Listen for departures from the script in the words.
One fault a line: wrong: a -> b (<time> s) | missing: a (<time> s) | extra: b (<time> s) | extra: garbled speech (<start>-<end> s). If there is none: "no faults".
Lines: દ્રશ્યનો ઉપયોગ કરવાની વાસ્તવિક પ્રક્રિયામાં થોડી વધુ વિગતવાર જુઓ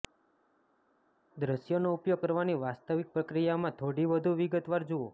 no faults